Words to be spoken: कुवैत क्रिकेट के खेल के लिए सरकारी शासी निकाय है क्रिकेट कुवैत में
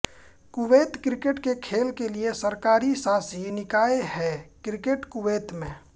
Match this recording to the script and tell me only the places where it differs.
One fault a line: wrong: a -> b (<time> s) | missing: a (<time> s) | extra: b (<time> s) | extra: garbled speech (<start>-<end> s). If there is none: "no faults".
no faults